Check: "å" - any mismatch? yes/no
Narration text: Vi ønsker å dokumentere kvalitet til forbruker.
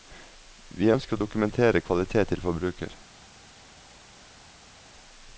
no